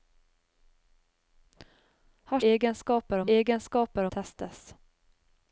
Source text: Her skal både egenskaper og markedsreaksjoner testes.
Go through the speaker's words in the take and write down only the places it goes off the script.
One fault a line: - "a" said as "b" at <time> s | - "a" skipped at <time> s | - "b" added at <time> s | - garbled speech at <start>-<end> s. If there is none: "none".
- "skal både" skipped at 2.4 s
- "markedsreaksjoner" said as "egenskaper" at 3.3 s